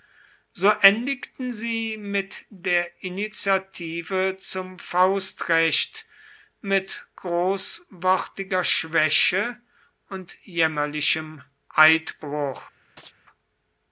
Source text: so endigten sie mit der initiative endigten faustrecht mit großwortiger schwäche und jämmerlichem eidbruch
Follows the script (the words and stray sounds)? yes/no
no